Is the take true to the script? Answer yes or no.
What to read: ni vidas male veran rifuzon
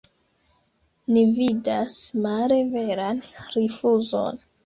yes